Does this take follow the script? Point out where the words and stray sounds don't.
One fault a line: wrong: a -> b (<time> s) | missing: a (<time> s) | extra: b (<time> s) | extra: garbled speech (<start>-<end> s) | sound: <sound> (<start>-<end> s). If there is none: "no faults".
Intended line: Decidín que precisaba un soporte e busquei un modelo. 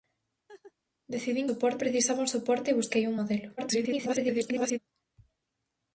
sound: laugh (0.5-0.7 s)
wrong: que -> soporte (1.5 s)
extra: garbled speech (3.6-4.8 s)